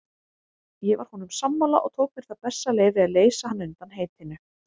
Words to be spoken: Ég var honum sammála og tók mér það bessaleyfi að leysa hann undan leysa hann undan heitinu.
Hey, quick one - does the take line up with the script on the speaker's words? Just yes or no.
no